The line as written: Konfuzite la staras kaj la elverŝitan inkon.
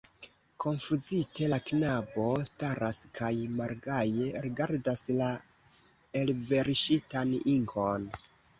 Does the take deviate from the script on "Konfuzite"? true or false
false